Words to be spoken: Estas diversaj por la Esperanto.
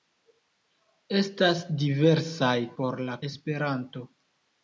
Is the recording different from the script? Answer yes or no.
no